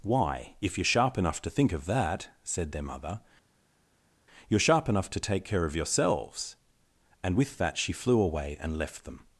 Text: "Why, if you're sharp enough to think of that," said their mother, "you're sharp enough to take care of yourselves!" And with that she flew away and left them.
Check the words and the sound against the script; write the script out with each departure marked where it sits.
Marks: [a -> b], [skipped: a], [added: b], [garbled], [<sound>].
"Why, if you're sharp enough to think of that," said their mother, "you're sharp enough to take care of yourselves!" And with that she flew away and left them.